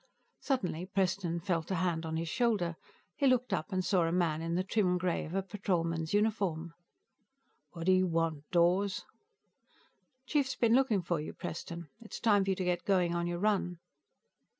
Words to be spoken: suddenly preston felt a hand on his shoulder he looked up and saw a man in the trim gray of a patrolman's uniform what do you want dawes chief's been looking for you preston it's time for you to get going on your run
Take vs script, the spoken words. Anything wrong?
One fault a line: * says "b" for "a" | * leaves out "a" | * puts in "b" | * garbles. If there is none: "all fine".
all fine